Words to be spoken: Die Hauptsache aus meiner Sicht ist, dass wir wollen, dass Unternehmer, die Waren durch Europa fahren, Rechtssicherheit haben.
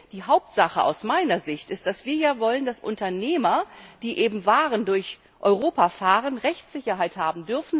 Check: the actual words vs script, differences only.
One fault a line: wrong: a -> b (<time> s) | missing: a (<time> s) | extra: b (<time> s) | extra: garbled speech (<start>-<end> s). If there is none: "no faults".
no faults